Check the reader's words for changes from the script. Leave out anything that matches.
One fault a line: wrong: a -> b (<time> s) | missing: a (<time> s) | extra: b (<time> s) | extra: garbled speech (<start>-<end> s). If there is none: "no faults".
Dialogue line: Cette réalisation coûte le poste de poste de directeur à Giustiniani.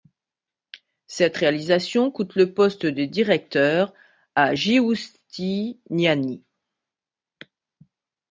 missing: poste de (3.0 s)